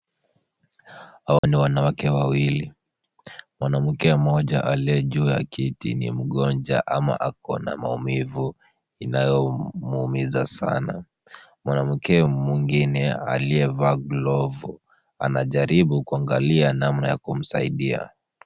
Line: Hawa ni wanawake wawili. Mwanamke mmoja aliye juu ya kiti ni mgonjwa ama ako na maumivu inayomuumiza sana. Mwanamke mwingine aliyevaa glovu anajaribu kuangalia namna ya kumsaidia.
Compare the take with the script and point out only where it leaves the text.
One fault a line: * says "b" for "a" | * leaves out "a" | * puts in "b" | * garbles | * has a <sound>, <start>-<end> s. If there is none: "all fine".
* has a dropout, 1.4-1.4 s